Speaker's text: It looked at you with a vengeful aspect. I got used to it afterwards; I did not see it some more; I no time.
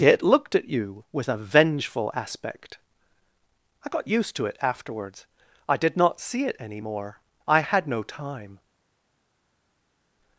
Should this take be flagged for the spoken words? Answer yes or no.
yes